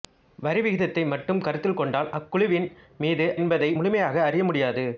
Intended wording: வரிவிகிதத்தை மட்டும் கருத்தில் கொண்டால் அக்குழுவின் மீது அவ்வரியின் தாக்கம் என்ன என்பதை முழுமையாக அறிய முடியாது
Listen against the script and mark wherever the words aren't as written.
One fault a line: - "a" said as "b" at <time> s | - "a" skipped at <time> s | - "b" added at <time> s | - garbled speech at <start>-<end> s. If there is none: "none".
- "அவ்வரியின் தாக்கம் என்ன" skipped at 3.3 s